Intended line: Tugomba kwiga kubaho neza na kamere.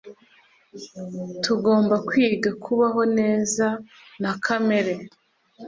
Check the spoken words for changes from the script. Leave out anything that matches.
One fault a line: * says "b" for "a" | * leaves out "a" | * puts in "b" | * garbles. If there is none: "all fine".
all fine